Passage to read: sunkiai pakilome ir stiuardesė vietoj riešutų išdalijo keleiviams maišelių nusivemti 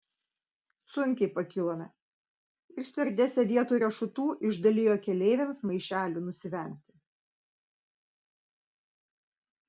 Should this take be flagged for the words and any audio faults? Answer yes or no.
no